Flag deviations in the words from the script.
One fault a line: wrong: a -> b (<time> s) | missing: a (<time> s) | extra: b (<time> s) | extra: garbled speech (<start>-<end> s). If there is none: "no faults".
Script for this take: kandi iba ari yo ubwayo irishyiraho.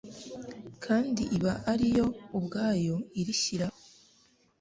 no faults